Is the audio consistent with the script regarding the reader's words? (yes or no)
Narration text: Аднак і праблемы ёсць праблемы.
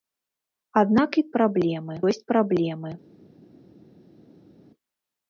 yes